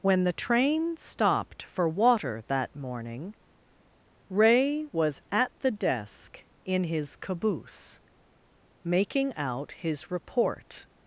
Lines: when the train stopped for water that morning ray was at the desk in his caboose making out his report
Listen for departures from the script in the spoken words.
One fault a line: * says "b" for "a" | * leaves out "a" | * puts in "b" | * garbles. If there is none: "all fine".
all fine